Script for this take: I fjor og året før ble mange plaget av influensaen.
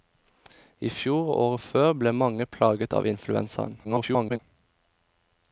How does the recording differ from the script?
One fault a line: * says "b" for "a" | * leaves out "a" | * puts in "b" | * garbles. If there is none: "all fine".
* garbles